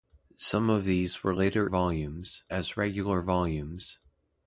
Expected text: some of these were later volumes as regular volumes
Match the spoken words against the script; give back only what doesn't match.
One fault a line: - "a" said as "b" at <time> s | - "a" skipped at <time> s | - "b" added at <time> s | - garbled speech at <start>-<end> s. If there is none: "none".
none